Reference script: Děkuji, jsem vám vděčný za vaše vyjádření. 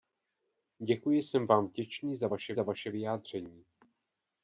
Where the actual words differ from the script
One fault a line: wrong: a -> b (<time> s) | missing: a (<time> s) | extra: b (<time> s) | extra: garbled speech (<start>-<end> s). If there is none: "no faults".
extra: za vaše (2.5 s)